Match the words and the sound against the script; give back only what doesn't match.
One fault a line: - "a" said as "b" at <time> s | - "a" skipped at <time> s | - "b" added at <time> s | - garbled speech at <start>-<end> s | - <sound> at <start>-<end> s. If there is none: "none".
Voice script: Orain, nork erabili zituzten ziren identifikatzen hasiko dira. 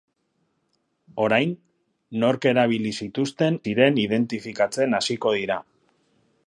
none